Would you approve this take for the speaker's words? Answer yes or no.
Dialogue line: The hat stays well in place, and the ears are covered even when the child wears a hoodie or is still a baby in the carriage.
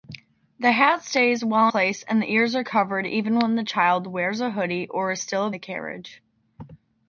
no